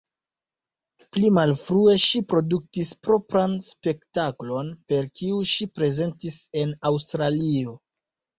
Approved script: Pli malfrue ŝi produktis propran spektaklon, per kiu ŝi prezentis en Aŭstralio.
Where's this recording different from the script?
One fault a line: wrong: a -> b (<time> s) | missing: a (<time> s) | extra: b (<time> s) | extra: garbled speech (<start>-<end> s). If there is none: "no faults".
no faults